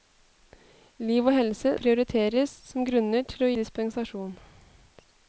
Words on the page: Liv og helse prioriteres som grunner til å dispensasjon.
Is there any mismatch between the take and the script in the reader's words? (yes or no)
no